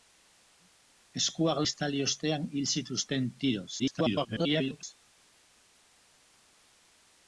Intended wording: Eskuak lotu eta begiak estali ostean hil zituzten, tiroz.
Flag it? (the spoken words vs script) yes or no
yes